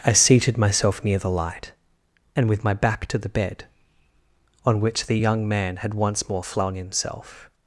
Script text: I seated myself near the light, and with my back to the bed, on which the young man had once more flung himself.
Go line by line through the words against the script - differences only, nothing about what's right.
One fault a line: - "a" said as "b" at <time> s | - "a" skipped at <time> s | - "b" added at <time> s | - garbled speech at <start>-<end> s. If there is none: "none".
none